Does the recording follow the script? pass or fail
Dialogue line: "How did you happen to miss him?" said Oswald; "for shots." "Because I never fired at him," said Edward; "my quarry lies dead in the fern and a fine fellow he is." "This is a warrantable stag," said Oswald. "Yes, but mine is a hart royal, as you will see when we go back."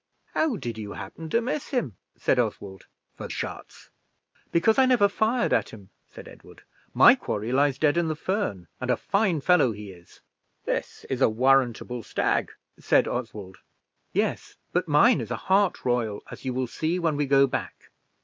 pass